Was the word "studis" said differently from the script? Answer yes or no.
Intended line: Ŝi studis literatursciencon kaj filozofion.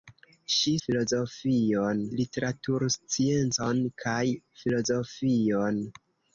yes